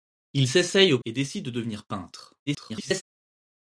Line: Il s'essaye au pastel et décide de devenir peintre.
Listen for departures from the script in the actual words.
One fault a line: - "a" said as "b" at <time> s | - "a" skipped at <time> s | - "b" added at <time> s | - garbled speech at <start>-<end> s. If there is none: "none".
- "pastel" skipped at 1.0 s
- garbled speech at 2.5-3.0 s